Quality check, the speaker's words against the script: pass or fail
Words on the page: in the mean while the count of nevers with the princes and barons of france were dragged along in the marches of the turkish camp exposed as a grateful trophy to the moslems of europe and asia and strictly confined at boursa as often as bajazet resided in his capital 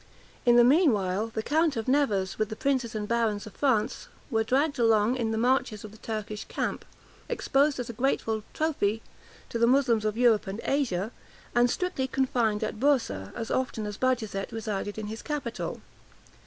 pass